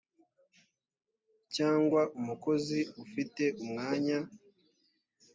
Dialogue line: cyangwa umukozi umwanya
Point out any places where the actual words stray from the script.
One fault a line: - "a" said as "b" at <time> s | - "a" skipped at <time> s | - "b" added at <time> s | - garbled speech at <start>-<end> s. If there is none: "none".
- "ufite" added at 3.0 s